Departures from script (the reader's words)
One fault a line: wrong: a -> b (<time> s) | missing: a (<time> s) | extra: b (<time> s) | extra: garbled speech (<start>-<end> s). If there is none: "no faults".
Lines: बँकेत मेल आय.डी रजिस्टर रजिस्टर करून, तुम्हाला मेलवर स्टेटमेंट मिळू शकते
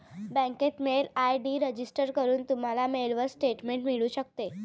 missing: रजिस्टर (2.1 s)